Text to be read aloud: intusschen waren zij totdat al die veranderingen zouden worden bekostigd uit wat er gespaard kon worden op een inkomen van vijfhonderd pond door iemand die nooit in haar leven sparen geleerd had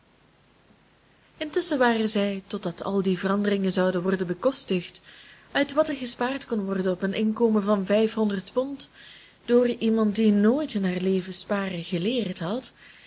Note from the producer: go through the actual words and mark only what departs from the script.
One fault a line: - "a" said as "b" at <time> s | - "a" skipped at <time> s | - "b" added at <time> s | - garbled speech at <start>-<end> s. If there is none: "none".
none